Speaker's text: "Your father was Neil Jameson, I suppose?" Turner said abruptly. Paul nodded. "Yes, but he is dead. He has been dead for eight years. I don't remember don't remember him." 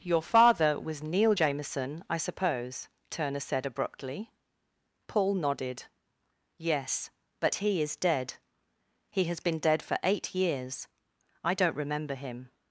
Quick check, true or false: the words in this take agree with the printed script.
false